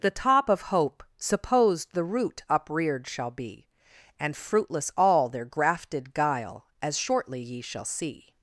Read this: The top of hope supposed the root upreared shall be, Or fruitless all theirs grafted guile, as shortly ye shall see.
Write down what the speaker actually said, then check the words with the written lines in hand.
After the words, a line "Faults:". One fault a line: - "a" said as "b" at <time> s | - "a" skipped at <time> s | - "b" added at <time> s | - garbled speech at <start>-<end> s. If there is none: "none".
The top of hope supposed the root upreared shall be, And fruitless all their grafted guile, as shortly ye shall see.
Faults:
- "Or" said as "And" at 4.2 s
- "theirs" said as "their" at 5.3 s